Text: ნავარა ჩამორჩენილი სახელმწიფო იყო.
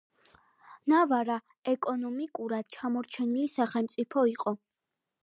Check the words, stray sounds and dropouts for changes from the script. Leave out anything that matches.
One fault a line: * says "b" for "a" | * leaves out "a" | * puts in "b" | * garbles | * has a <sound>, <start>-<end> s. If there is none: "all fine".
* puts in "ეკონომიკურად"